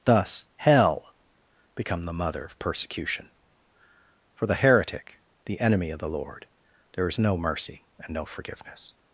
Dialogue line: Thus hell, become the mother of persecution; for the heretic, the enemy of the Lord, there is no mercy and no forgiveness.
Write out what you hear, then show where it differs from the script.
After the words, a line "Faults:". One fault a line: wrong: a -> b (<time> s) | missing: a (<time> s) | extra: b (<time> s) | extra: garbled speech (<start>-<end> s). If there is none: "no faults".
Thus hell, become the mother of persecution; for the heretic, the enemy of the Lord, there is no mercy and no forgiveness.
Faults:
no faults